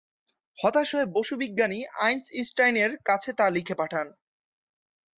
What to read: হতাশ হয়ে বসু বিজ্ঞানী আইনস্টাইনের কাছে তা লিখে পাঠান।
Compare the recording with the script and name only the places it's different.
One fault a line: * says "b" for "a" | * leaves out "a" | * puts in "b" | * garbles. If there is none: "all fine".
all fine